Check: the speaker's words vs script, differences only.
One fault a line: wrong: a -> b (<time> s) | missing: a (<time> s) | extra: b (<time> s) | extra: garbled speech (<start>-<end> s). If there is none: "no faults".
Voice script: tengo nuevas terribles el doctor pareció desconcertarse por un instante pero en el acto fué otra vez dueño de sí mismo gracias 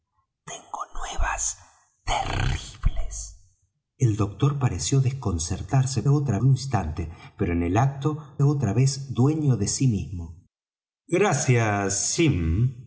wrong: por -> otra (6.1 s)
missing: fué (8.4 s)